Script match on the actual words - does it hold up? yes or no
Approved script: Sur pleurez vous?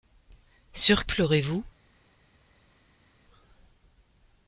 yes